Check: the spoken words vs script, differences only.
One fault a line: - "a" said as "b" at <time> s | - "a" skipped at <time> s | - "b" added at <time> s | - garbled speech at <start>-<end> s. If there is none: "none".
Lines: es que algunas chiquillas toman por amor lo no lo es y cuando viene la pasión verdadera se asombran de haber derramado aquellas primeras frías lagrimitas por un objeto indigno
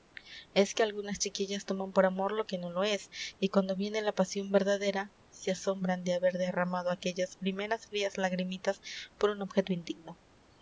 - "que" added at 2.4 s